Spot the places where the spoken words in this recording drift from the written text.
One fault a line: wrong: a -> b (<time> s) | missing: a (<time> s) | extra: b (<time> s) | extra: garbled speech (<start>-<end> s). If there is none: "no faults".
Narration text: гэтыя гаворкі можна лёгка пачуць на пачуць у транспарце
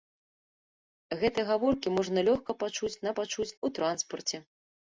no faults